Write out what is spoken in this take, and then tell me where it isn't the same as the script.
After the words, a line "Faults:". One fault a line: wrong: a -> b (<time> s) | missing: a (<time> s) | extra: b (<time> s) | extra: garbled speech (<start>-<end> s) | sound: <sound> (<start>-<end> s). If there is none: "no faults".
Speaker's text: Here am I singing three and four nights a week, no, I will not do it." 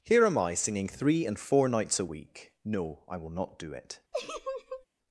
Here am I singing three and four nights a week, no, I will not do it."
Faults:
sound: laugh (4.1-4.9 s)